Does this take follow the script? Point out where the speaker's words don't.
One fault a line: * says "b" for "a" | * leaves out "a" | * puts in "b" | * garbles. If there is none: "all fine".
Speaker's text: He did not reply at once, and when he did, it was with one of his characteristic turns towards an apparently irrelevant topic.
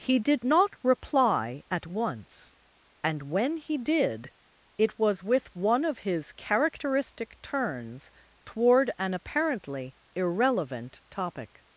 * says "toward" for "towards"